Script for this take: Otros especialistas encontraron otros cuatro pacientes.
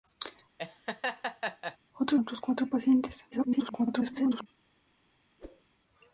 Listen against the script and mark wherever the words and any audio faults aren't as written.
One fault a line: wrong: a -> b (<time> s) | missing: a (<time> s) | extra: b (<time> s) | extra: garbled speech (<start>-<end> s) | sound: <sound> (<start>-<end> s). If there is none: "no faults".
sound: laugh (0.6-1.8 s)
missing: especialistas encontraron (2.2 s)
extra: garbled speech (3.3-4.5 s)
sound: whoosh (5.4-5.6 s)